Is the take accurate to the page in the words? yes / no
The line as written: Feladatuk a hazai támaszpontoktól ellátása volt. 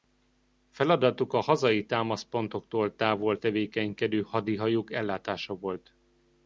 no